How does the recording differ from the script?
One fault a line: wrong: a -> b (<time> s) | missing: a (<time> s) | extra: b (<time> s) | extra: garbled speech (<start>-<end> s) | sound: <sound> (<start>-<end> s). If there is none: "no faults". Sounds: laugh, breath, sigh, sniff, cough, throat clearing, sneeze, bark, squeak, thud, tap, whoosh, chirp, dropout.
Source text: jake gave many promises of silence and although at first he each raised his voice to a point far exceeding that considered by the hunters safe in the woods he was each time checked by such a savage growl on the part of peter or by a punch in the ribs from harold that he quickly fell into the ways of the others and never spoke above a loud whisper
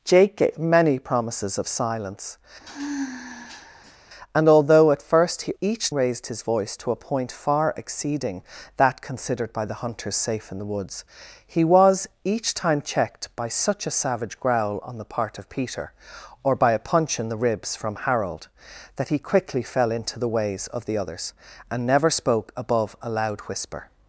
sound: sigh (2.6-4.0 s)